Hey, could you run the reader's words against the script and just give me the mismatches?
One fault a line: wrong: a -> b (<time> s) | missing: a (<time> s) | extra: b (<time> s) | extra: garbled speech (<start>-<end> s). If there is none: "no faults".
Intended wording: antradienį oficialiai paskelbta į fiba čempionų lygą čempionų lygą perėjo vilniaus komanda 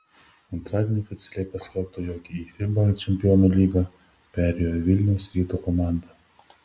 extra: jog (2.1 s)
missing: čempionų lygą (3.8 s)
extra: ryto (5.4 s)